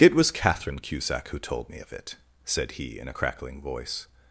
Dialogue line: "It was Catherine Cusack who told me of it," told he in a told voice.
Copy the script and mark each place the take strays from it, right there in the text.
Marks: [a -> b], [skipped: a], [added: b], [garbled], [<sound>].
"It was Catherine Cusack who told me of it," [told -> said] he in a [told -> crackling] voice.